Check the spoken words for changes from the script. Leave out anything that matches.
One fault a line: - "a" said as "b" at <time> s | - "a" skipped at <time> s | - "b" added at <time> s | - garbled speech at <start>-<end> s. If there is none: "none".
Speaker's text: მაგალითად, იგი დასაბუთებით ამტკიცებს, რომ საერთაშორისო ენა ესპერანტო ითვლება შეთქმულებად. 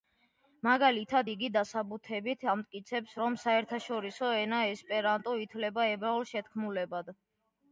- "ებრაულ" added at 5.9 s